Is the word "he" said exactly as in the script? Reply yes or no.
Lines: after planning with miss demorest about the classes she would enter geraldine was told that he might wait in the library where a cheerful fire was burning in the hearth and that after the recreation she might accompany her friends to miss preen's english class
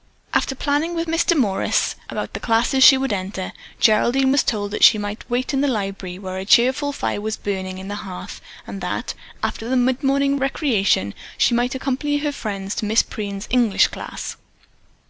no